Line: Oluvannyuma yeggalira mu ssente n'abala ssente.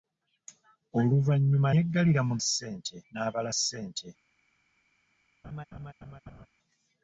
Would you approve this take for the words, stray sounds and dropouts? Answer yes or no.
no